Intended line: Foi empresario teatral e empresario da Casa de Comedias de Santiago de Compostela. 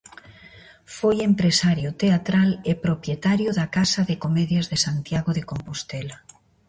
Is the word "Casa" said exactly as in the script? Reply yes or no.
yes